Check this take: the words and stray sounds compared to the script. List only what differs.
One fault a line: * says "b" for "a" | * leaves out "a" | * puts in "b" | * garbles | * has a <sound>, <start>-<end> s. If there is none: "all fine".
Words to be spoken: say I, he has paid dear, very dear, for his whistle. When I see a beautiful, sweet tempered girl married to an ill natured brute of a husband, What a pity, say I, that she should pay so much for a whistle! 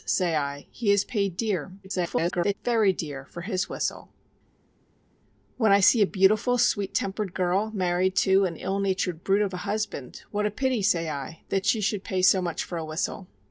* garbles